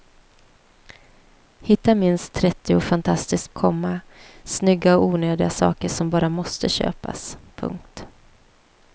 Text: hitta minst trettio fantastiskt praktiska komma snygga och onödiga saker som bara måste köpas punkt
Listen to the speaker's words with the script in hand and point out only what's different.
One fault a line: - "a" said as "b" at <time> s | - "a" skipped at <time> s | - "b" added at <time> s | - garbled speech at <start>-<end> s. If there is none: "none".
- "praktiska" skipped at 3.5 s